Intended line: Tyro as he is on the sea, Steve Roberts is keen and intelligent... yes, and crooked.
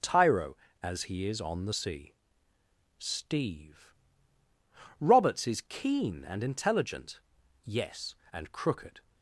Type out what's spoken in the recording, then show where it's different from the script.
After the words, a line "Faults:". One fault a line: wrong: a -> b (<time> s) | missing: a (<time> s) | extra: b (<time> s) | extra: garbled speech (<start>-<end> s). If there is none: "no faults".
Tyro as he is on the sea, Steve Roberts is keen and intelligent... yes, and crooked.
Faults:
no faults